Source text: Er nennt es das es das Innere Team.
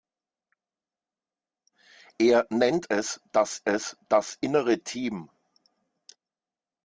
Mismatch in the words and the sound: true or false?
false